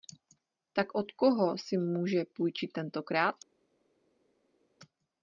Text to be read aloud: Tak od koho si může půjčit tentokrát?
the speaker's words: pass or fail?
pass